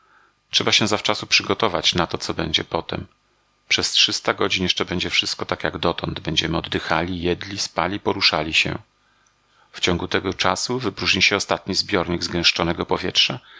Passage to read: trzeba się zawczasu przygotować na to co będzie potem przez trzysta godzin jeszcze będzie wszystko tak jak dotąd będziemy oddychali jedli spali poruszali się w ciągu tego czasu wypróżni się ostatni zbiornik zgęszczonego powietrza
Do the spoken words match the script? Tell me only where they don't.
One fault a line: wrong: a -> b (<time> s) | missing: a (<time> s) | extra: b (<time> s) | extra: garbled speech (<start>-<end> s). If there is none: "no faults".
no faults